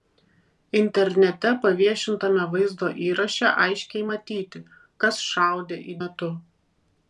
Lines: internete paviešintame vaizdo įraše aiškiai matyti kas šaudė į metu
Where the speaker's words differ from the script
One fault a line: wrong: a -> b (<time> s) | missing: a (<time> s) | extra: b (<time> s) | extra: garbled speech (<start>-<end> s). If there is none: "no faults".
no faults